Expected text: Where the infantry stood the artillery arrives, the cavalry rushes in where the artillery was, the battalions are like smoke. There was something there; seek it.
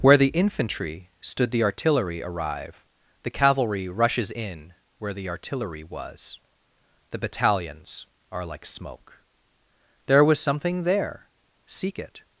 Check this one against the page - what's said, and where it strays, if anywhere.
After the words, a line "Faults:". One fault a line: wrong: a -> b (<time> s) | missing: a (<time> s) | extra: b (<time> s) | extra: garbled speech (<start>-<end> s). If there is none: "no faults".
Where the infantry stood the artillery arrive, the cavalry rushes in where the artillery was, the battalions are like smoke. There was something there; seek it.
Faults:
wrong: arrives -> arrive (2.2 s)